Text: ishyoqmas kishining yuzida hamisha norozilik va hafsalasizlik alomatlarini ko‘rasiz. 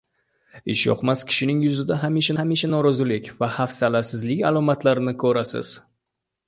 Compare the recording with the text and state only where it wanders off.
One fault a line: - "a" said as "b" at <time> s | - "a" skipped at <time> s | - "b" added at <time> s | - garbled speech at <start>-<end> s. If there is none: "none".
- "hamisha" added at 2.4 s